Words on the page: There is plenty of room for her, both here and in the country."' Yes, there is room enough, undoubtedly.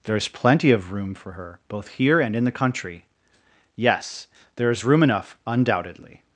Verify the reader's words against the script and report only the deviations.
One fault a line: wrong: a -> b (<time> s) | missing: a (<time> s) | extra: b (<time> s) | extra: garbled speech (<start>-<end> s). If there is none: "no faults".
no faults